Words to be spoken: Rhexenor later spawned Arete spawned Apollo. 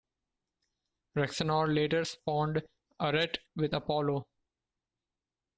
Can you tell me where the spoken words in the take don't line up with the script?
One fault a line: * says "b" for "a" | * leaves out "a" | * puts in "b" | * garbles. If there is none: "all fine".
* says "with" for "spawned"